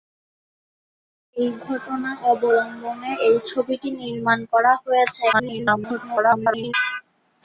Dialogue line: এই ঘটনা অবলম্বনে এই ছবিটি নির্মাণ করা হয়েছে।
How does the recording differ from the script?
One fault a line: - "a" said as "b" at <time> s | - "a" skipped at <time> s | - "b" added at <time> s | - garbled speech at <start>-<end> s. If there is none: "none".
- garbled speech at 5.3-6.7 s